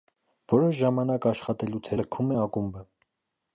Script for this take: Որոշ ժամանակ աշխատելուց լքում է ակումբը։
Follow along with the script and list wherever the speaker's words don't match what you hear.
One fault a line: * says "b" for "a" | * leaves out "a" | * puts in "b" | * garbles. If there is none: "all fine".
all fine